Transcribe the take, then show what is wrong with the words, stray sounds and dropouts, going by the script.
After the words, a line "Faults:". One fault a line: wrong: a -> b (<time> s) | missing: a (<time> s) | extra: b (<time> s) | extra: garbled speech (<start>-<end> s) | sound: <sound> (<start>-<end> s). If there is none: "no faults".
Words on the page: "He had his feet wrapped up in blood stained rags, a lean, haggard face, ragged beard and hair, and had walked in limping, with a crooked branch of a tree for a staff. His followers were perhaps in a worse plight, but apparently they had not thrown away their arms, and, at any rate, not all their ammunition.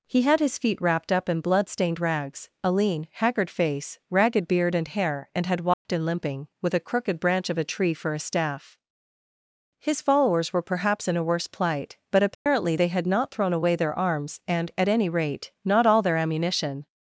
"He had his feet wrapped up in blood stained rags, a lean, haggard face, ragged beard and hair, and had walked in limping, with a crooked branch of a tree for a staff. His followers were perhaps in a worse plight, but apparently they had not thrown away their arms, and, at any rate, not all their ammunition.
Faults:
sound: dropout (5.7-5.9 s)
sound: dropout (12.3-12.5 s)